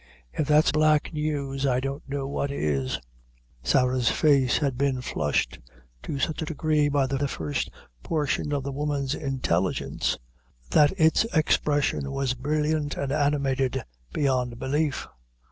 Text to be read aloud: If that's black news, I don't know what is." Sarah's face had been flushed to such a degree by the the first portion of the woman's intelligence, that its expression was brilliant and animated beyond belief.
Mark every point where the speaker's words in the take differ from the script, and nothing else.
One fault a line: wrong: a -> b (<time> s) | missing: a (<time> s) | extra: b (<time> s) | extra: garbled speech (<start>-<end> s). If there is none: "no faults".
no faults